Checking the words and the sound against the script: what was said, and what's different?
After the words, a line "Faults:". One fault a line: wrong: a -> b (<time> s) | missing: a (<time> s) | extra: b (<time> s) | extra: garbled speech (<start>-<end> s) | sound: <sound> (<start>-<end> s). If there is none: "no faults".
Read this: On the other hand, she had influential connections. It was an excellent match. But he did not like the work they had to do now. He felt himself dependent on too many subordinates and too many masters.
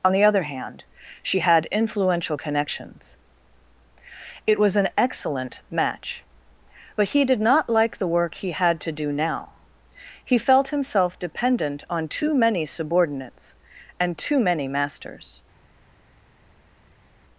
On the other hand, she had influential connections. It was an excellent match. But he did not like the work he had to do now. He felt himself dependent on too many subordinates and too many masters.
Faults:
wrong: they -> he (8.3 s)